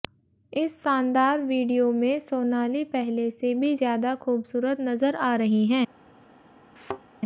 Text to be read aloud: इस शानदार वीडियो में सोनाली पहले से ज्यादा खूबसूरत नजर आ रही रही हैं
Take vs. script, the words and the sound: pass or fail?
fail